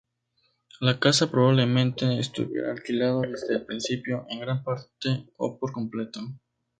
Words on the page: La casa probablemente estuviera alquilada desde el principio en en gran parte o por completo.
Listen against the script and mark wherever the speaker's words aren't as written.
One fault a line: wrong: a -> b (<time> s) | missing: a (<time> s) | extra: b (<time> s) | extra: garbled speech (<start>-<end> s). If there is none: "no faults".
missing: en (4.4 s)